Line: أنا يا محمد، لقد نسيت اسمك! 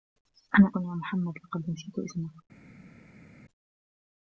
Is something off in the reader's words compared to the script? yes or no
no